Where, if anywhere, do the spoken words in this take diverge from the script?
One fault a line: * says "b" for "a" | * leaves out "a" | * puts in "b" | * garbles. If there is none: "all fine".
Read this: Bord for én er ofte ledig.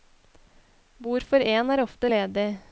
all fine